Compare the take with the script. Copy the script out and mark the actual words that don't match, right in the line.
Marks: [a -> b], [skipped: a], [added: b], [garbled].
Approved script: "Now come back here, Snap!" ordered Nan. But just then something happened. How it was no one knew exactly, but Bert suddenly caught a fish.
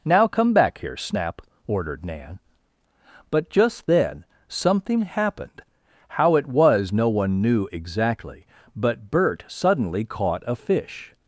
"Now come back here, Snap!" ordered Nan. But just then something happened. How it was no one knew exactly, but Bert suddenly caught a fish.